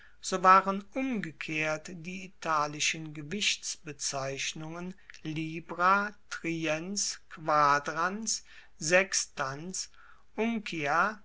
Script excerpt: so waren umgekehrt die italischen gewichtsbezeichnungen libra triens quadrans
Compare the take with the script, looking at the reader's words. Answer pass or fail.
pass